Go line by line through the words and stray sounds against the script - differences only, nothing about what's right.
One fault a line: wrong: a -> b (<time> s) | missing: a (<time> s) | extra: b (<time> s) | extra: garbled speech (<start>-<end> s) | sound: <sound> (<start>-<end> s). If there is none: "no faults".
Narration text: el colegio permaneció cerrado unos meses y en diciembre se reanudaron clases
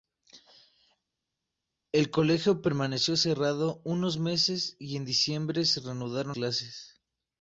no faults